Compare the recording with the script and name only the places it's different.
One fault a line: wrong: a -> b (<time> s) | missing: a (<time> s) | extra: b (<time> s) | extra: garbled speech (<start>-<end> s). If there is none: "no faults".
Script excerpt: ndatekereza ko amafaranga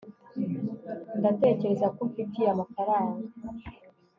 extra: umfitiye (2.1 s)